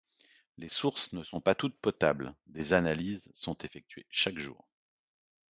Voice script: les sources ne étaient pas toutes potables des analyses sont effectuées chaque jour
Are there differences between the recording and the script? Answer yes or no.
yes